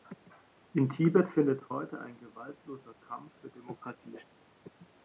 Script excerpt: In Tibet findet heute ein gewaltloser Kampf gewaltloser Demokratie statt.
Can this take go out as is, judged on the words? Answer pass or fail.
fail